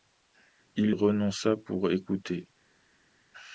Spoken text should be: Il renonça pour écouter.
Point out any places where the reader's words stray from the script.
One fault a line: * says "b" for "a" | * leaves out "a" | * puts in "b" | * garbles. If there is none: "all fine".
all fine